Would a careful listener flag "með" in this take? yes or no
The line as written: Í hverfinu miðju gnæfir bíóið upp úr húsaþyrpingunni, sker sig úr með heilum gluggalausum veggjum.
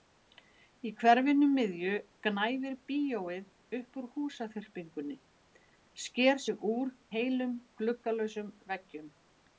yes